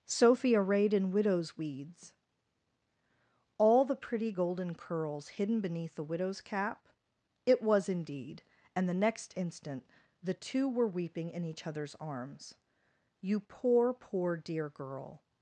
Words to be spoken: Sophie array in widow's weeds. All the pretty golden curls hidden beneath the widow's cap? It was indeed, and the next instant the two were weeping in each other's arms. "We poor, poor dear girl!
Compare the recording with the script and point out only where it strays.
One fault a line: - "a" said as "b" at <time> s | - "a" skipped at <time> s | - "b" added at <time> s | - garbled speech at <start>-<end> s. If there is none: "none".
- "array" said as "arrayed" at 0.6 s
- "We" said as "You" at 13.2 s